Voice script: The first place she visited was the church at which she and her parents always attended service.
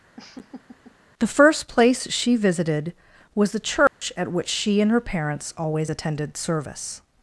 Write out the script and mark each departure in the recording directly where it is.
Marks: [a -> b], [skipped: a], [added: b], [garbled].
The first place she visited was the church at which she and her parents always attended service.